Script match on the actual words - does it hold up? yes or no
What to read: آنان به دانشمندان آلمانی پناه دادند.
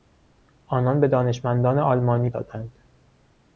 no